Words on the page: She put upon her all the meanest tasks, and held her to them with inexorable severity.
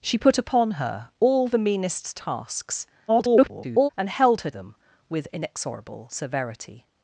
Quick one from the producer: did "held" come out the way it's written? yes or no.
yes